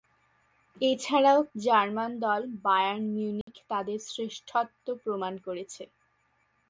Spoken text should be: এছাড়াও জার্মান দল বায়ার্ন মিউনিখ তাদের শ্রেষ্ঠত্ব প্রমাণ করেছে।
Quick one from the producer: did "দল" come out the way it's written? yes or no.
yes